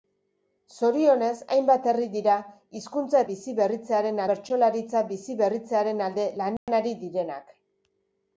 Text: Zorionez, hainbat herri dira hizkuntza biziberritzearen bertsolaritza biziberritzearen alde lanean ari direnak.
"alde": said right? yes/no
yes